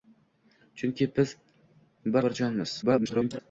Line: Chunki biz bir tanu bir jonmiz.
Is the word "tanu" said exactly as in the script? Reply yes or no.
no